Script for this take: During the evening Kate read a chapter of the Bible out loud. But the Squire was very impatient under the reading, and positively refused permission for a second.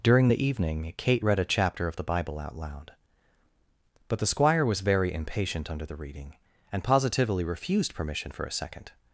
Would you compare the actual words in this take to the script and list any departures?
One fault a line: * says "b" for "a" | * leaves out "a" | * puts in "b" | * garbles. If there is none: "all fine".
all fine